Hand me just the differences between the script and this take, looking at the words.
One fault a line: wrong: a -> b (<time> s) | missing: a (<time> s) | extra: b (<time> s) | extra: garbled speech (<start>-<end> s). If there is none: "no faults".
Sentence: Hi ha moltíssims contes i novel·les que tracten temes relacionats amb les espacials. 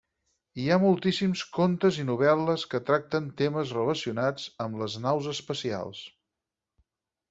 extra: naus (5.1 s)